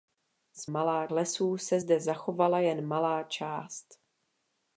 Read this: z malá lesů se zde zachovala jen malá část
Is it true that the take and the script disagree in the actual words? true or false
false